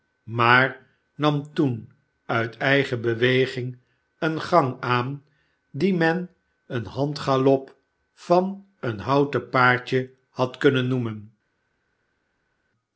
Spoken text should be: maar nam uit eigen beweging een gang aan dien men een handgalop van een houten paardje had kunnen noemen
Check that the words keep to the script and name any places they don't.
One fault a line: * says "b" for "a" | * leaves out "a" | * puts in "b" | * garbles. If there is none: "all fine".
* puts in "toen"